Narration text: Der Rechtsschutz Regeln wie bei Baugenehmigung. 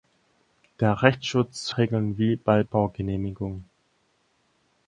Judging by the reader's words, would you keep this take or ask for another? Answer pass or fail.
pass